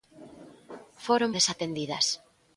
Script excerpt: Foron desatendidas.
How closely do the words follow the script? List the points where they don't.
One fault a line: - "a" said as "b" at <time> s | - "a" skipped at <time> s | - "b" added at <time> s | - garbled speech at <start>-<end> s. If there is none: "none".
none